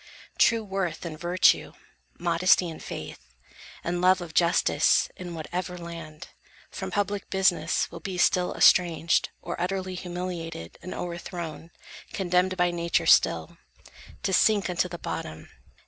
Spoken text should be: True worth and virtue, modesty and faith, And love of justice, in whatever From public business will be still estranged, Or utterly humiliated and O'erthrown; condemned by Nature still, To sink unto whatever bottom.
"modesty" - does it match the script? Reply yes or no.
yes